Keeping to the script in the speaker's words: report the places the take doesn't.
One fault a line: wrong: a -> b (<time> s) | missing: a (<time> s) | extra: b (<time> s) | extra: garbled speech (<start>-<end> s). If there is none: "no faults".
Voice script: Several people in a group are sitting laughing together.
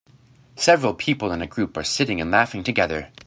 extra: and (2.2 s)